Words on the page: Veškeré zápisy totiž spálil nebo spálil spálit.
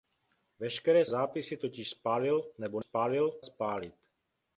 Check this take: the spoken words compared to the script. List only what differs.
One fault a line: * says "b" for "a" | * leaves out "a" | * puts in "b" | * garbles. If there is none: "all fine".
all fine